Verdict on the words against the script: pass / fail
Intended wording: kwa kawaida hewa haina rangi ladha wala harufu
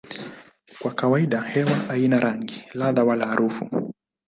pass